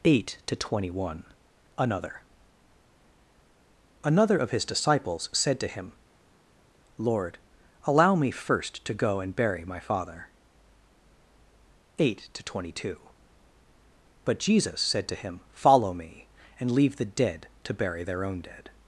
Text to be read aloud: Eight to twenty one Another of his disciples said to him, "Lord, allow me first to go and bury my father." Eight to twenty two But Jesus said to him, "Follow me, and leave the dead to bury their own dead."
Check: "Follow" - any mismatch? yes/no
no